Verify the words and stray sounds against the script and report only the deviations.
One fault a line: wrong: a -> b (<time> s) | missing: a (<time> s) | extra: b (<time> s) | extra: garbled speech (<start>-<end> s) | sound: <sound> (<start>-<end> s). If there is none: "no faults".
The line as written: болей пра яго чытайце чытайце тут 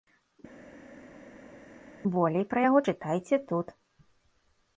missing: чытайце (3.4 s)